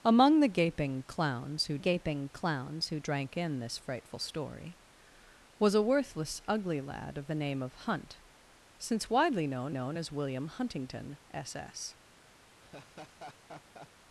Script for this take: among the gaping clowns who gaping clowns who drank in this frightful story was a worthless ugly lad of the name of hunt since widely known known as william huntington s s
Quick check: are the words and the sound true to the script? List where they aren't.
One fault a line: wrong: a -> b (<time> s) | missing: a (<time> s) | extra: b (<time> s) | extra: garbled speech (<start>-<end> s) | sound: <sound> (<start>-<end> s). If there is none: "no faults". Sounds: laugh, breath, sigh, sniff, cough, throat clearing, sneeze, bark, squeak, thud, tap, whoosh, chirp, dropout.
sound: laugh (12.6-13.9 s)